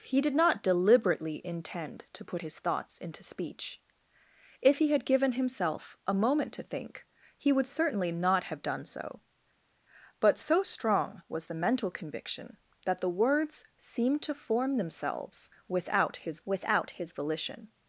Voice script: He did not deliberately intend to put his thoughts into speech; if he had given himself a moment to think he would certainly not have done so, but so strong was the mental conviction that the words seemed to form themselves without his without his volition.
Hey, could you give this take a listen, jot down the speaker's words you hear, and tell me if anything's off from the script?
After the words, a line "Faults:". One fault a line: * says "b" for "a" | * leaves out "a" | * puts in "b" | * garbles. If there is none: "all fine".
He did not deliberately intend to put his thoughts into speech; if he had given himself a moment to think he would certainly not have done so, but so strong was the mental conviction that the words seemed to form themselves without his without his volition.
Faults:
all fine